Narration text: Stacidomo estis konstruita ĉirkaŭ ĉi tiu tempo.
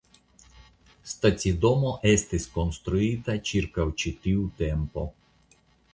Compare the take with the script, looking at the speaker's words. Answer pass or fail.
pass